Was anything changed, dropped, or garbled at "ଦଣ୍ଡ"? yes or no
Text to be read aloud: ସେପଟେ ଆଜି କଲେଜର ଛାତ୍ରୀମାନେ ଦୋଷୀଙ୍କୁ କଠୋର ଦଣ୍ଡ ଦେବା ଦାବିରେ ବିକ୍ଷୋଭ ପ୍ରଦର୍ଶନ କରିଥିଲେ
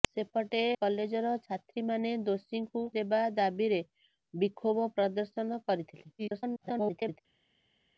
yes